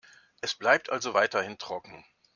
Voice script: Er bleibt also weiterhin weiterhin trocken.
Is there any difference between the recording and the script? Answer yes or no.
yes